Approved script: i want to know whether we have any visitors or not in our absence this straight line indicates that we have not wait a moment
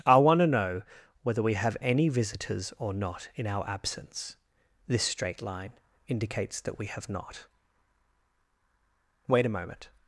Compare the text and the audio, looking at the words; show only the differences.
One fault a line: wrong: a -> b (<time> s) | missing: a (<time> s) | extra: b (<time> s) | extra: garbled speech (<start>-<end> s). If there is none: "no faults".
no faults